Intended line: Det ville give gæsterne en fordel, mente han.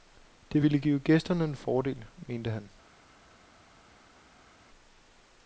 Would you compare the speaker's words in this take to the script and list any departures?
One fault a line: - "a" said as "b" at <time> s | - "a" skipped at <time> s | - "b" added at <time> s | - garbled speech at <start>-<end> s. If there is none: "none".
none